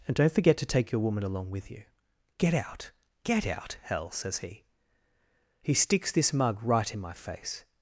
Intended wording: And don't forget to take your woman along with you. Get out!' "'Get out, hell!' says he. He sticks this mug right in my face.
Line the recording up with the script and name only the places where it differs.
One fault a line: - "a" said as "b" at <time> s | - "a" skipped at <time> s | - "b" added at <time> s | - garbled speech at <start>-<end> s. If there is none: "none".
none